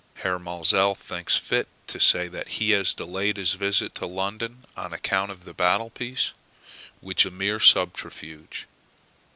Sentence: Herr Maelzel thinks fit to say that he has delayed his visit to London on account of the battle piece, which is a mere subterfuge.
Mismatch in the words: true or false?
true